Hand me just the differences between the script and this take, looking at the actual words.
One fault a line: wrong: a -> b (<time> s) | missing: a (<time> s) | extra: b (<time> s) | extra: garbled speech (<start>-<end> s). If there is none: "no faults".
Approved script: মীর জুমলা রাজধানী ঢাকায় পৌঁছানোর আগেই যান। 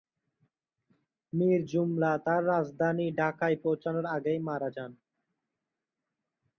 extra: তার (2.3 s)
extra: মারা (4.5 s)